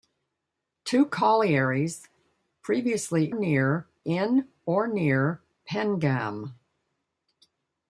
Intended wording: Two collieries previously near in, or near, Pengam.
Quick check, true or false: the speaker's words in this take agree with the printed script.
true